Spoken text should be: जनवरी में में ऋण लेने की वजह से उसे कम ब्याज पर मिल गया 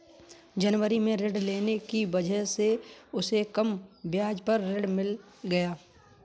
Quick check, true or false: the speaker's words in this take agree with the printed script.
false